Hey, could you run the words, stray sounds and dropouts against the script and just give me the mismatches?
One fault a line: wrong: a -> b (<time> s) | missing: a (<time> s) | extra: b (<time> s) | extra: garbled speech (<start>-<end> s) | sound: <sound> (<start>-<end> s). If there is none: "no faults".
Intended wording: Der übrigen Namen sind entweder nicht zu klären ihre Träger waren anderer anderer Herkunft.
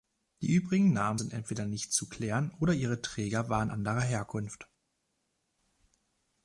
wrong: Der -> Die (0.4 s)
extra: oder (2.6 s)
missing: anderer (4.0 s)